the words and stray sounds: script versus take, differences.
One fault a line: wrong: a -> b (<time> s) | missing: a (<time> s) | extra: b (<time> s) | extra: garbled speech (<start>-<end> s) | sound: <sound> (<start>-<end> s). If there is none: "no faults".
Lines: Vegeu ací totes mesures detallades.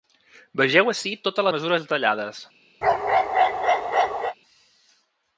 sound: bark (2.8-4.3 s)